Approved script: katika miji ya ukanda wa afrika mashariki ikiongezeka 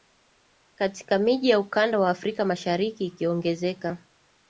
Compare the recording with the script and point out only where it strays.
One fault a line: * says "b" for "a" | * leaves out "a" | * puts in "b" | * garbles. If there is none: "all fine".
all fine